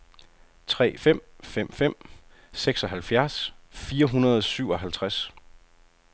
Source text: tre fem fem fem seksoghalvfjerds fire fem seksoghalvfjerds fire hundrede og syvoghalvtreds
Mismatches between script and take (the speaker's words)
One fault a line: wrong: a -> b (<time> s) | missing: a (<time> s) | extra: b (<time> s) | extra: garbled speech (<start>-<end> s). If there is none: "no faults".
missing: fem seksoghalvfjerds fire (4.1 s)